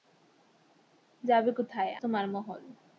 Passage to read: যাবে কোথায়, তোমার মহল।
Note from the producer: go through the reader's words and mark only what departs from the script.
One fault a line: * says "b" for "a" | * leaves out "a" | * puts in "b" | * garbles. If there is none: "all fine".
all fine